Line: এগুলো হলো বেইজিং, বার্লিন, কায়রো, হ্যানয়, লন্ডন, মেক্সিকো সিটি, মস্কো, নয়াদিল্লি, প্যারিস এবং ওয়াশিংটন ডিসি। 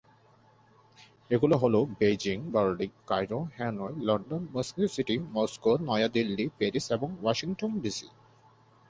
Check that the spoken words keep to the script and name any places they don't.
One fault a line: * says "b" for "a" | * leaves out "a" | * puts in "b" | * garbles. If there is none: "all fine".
all fine